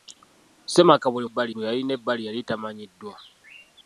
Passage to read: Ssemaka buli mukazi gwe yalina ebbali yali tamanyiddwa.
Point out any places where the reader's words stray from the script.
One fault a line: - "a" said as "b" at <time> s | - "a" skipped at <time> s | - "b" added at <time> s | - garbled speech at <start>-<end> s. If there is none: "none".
- "mukazi" said as "ebbali" at 1.3 s